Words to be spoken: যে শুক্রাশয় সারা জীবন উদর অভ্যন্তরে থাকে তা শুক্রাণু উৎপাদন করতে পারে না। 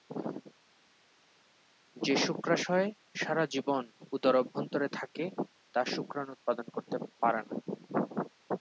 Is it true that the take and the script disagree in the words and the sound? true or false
false